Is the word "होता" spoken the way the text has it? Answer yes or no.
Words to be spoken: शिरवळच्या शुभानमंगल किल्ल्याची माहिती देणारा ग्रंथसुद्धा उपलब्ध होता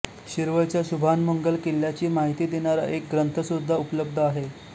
no